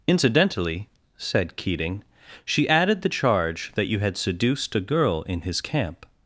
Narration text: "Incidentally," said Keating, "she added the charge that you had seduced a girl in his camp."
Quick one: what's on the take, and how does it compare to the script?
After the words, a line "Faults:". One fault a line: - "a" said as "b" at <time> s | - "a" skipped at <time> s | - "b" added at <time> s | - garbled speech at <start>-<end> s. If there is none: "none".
"Incidentally," said Keating, "she added the charge that you had seduced a girl in his camp."
Faults:
none